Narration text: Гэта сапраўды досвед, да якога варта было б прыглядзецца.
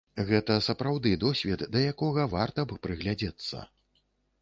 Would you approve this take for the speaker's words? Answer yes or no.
no